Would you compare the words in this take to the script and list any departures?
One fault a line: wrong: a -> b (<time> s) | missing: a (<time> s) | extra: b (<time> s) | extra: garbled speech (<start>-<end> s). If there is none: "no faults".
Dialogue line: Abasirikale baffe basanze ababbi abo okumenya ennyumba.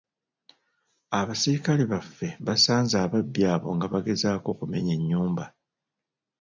extra: nga bagezaako (3.8 s)